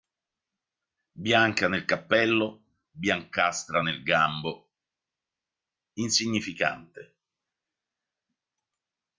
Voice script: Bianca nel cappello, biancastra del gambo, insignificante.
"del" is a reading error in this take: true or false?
true